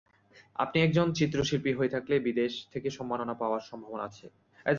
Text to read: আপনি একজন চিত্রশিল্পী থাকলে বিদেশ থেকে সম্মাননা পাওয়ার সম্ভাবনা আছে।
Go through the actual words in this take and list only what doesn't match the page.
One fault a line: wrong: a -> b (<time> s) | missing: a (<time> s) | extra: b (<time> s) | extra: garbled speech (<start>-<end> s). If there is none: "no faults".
extra: হয়ে (1.7 s)